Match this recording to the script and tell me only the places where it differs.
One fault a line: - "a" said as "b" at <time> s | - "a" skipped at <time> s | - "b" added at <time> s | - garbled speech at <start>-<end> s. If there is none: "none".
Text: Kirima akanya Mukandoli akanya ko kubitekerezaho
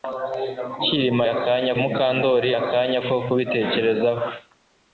none